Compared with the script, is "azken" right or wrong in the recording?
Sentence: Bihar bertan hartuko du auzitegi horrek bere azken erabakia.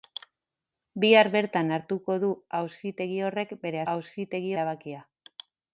wrong